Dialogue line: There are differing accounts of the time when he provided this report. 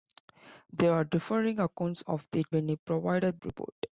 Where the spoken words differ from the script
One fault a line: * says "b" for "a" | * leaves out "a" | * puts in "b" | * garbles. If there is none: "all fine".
* leaves out "time"
* leaves out "this"